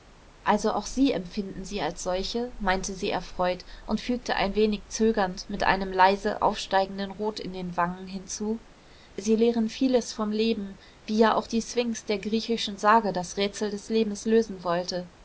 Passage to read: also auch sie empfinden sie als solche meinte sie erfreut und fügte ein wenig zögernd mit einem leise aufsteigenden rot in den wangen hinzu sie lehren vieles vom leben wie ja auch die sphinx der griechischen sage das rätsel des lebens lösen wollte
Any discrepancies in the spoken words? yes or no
no